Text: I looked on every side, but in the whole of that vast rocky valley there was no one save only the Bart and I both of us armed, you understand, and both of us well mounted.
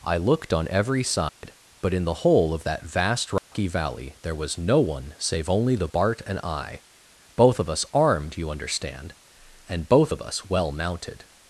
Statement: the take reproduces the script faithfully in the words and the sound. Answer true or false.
false